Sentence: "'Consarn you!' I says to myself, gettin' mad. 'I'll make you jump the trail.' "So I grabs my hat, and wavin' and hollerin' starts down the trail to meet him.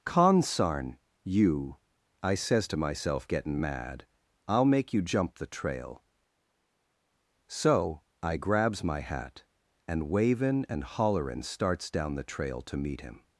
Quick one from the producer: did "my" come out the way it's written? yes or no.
yes